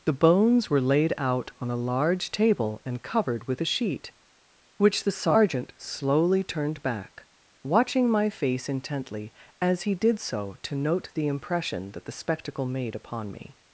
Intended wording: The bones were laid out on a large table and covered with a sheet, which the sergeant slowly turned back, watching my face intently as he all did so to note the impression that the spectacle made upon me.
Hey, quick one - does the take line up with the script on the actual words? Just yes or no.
no